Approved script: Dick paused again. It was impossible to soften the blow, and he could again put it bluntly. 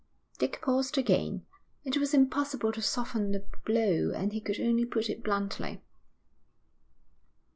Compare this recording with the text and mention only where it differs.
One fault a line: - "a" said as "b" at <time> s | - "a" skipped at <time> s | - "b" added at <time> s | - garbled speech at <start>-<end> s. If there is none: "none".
- "again" said as "only" at 4.6 s